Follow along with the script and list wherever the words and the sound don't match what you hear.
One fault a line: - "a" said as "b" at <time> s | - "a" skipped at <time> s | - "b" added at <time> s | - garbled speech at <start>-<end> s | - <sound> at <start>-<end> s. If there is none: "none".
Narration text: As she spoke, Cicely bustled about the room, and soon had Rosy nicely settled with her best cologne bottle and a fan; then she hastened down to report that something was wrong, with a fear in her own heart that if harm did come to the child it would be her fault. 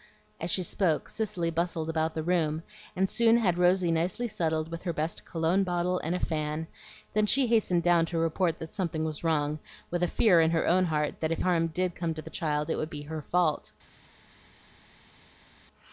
none